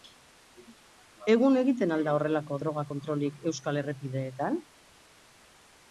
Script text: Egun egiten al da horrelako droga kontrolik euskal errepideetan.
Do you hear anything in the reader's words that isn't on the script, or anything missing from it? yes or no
no